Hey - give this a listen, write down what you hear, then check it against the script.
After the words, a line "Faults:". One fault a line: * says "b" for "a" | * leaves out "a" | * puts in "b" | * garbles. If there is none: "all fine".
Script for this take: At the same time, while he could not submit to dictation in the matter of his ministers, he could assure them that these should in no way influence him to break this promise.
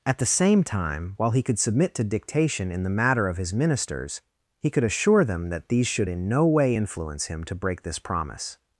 At the same time, while he could submit to dictation in the matter of his ministers, he could assure them that these should in no way influence him to break this promise.
Faults:
* leaves out "not"